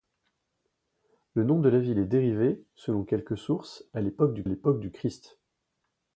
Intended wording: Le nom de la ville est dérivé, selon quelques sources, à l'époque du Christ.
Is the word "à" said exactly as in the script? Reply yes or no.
yes